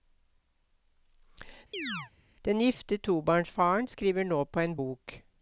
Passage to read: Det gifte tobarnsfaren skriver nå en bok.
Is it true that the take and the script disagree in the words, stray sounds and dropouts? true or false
true